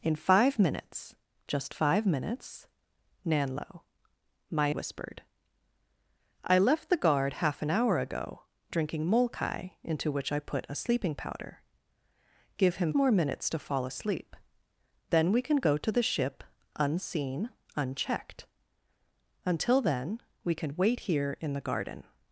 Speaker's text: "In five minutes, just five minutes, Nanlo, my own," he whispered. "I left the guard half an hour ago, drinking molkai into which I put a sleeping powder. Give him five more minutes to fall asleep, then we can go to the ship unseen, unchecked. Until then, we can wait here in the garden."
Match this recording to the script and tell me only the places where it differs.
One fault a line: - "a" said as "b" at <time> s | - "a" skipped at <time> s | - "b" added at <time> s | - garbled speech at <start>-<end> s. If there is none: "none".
- "own he" skipped at 4.8 s
- "five" skipped at 12.9 s